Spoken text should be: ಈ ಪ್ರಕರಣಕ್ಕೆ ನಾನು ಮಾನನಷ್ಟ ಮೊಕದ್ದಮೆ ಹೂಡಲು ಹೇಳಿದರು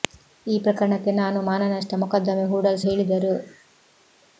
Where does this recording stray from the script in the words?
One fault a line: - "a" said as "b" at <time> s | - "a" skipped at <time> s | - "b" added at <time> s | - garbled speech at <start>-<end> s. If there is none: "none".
none